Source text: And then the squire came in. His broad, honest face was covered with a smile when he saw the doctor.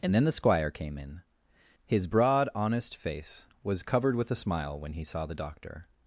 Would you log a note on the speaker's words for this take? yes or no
no